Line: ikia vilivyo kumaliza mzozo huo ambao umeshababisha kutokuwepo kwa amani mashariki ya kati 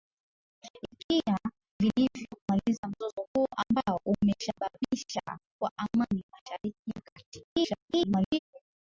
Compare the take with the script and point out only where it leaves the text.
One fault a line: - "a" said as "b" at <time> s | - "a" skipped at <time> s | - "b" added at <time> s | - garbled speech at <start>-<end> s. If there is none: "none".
- "kutokuwepo" skipped at 5.2 s
- garbled speech at 7.5-8.4 s